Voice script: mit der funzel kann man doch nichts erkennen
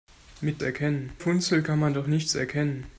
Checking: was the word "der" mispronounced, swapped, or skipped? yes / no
yes